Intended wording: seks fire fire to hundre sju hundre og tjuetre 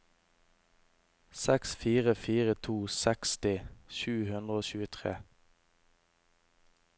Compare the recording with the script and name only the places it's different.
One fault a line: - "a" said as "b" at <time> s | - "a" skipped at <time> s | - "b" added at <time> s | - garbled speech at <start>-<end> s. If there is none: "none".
- "hundre" said as "seksti" at 3.0 s